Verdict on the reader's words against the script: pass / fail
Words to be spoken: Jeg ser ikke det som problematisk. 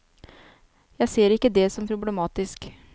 pass